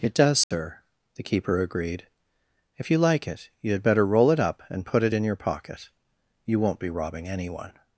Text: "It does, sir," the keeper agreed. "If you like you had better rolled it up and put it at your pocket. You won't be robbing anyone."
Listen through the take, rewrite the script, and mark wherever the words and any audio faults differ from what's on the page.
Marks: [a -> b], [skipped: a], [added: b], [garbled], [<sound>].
"It does, sir," [dropout] the keeper agreed. "If you like [added: it] you had better [rolled -> roll] it up and put it [at -> in] your pocket. You won't be robbing anyone."